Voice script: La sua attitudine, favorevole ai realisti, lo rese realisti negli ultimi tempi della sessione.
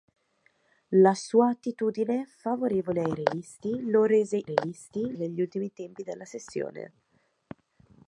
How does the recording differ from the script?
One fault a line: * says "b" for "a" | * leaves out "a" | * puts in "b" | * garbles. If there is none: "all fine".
all fine